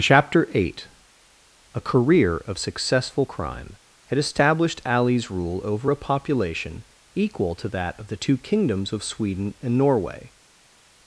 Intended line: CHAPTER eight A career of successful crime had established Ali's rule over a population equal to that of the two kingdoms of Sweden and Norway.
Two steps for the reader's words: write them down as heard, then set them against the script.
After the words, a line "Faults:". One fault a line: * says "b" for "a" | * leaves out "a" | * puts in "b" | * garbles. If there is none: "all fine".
CHAPTER eight A career of successful crime had established Ali's rule over a population equal to that of the two kingdoms of Sweden and Norway.
Faults:
all fine